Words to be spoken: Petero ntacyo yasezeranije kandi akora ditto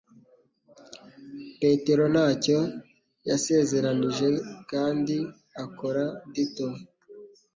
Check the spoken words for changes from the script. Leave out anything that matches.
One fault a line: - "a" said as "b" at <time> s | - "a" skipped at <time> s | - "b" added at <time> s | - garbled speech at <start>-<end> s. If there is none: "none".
none